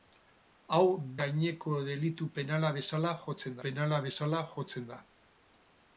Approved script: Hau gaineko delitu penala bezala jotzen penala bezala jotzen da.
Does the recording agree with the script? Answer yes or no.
yes